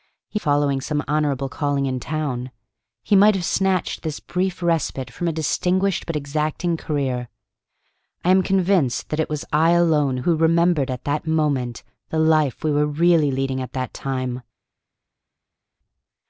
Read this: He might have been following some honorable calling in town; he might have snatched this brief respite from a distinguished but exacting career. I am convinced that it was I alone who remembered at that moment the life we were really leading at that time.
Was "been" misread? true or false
true